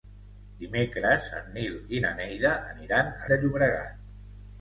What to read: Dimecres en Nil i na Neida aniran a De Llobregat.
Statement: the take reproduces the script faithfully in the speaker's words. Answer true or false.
true